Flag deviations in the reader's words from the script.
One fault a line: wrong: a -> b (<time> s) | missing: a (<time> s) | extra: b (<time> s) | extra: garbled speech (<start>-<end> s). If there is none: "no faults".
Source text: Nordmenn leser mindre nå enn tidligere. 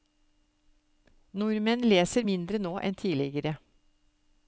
no faults